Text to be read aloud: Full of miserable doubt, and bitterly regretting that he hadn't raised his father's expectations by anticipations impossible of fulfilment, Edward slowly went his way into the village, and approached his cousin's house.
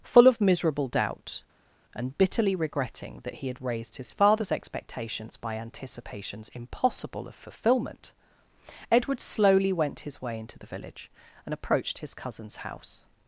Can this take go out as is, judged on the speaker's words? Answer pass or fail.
fail